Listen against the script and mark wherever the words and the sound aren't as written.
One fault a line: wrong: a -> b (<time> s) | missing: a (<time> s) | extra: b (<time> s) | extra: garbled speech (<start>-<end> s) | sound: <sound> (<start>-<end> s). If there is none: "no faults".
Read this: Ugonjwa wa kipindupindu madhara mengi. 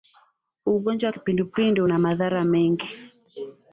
extra: una (1.8 s)